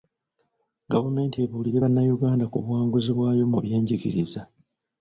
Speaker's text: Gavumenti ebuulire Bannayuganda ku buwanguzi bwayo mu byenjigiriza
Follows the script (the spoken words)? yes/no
yes